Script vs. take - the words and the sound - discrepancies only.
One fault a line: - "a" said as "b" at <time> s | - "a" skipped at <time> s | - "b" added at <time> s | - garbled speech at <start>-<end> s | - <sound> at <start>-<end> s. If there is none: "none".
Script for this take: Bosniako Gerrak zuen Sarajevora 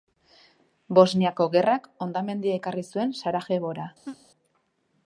- "hondamendia ekarri" added at 2.0 s
- laugh at 4.0-4.3 s